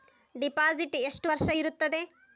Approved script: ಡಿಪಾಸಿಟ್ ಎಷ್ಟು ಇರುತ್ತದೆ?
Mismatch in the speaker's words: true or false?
true